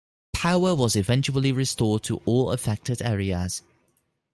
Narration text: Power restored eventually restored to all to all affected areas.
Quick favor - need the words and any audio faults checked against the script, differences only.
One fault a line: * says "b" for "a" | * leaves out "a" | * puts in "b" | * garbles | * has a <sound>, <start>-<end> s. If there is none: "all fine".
* says "was" for "restored"
* leaves out "to all"